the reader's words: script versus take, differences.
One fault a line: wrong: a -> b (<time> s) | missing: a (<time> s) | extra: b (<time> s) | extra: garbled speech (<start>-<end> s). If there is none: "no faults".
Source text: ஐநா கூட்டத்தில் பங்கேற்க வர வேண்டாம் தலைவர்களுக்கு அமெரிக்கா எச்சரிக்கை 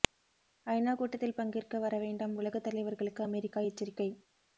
extra: உலக (2.4 s)